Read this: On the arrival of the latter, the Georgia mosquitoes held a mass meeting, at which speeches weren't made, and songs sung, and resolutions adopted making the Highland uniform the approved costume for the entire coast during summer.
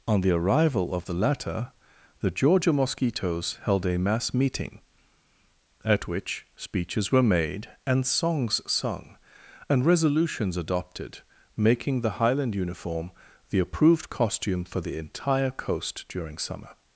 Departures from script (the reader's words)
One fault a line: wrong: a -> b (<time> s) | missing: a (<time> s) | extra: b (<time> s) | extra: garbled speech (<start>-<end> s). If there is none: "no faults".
wrong: weren't -> were (7.1 s)